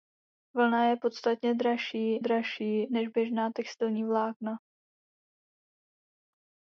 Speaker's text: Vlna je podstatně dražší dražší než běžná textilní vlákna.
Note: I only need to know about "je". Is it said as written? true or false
true